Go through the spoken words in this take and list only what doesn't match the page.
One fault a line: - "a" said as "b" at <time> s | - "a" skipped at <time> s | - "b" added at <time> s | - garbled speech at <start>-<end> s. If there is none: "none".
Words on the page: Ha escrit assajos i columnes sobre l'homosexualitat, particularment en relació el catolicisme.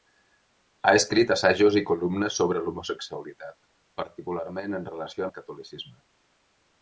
none